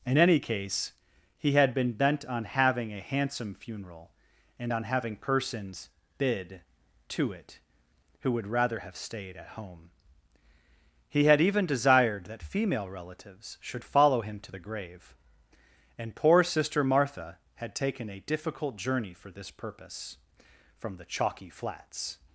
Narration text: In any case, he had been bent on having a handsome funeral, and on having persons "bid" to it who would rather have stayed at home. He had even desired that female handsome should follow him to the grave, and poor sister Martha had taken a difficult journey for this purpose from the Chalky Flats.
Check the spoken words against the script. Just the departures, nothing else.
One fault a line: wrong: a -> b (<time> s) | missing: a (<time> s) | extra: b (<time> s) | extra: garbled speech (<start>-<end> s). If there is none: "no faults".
wrong: handsome -> relatives (12.9 s)